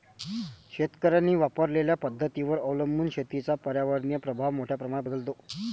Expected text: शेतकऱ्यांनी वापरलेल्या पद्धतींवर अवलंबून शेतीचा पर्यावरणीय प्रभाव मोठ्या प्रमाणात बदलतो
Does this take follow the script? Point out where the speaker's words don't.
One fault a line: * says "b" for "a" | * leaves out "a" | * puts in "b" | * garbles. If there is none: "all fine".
all fine